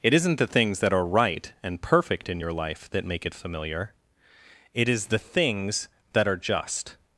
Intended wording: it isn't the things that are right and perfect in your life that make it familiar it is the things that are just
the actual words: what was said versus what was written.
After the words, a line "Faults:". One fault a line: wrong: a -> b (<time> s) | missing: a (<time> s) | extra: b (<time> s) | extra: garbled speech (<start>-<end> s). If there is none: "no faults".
it isn't the things that are right and perfect in your life that make it familiar it is the things that are just
Faults:
no faults